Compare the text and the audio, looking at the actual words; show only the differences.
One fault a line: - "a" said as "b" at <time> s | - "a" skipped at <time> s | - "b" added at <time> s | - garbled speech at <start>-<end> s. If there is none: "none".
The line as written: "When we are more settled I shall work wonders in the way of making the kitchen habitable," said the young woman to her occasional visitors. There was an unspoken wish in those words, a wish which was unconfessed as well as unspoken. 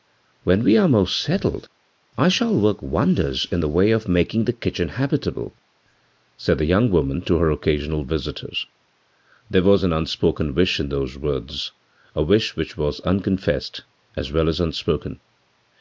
none